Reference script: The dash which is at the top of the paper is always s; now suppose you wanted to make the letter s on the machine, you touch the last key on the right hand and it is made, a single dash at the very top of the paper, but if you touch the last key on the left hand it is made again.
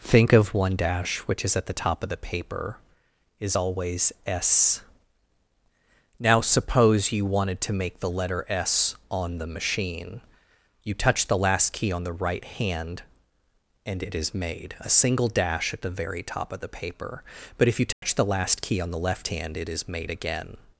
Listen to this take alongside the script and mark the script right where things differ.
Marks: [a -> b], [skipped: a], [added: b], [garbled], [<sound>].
[The -> Think of one] dash which is at the top of the paper is always s; now suppose you wanted to make the letter s on the machine, you touch the last key on the right hand and it is made, a single dash at the very top of the paper, but if you touch [dropout] the last key on the left hand it is made again.